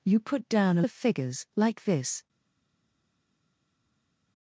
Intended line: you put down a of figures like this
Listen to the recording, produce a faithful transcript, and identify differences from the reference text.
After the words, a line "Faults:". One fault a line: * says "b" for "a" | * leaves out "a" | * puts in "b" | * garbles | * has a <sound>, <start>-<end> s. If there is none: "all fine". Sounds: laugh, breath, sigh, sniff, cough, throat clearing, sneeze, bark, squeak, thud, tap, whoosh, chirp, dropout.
you put down a of figures like this
Faults:
all fine